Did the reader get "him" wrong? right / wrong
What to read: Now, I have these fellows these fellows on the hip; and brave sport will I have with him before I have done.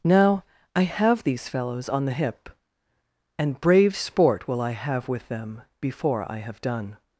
wrong